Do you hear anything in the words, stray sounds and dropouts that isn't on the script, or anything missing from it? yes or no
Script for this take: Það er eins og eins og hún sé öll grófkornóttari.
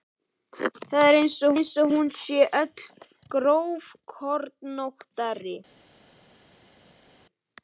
no